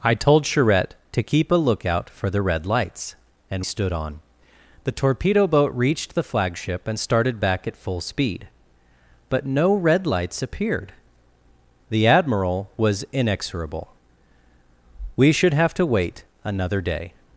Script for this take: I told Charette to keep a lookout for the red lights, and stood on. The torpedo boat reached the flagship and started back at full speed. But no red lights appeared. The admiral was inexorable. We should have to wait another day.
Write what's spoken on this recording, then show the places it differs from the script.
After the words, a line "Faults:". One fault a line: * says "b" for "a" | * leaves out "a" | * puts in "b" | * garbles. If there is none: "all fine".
I told Charette to keep a lookout for the red lights, and stood on. The torpedo boat reached the flagship and started back at full speed. But no red lights appeared. The admiral was inexorable. We should have to wait another day.
Faults:
all fine